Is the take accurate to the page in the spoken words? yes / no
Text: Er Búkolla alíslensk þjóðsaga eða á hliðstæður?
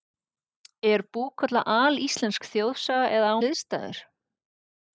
yes